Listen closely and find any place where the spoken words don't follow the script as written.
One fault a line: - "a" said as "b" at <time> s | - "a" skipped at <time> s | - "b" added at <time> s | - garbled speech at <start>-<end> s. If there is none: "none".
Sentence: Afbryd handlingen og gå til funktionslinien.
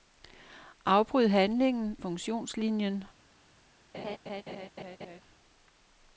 - "og gå til" skipped at 2.0 s